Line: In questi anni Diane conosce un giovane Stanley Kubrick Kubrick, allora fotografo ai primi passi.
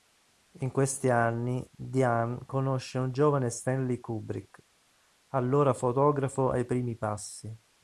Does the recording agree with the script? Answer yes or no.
no